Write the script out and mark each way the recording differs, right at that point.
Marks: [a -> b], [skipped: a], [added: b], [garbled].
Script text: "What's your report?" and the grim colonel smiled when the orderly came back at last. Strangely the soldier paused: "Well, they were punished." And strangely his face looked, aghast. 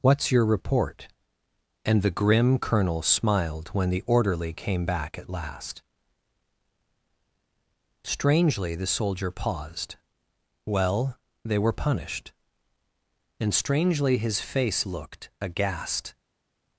"What's your report?" and the grim colonel smiled when the orderly came back at last. Strangely the soldier paused: "Well, they were punished." And strangely his face looked, aghast.